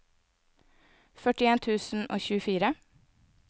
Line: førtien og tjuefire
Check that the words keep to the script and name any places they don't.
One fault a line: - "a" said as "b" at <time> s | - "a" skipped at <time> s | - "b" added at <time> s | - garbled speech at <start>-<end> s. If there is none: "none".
- "tusen" added at 1.7 s